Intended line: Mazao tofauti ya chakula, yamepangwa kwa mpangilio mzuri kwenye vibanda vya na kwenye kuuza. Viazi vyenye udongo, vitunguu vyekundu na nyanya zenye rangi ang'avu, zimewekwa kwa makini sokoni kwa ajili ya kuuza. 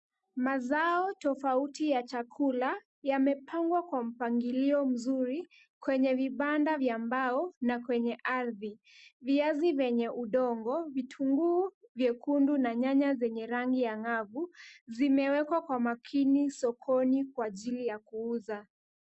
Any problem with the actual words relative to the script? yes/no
yes